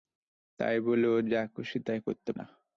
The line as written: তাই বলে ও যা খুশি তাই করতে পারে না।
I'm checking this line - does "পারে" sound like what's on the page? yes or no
no